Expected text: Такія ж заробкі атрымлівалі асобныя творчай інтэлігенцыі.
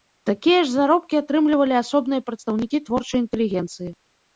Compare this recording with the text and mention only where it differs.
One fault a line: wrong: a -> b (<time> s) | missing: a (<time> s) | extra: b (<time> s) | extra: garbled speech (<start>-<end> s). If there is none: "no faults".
extra: прадстаўнікі (2.3 s)